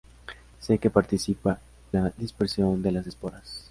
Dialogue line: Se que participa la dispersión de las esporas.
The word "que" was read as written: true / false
true